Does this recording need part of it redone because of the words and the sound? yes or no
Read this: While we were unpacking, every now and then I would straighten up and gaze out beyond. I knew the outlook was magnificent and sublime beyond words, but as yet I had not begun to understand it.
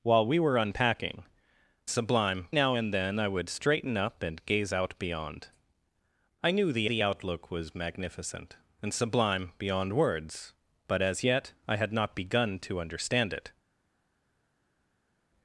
yes